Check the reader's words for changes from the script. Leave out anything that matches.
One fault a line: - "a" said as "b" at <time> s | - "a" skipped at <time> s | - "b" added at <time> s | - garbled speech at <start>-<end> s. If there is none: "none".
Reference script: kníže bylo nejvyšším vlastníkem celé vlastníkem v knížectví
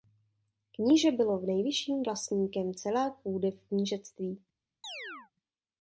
- "vlastníkem" said as "půdy" at 3.2 s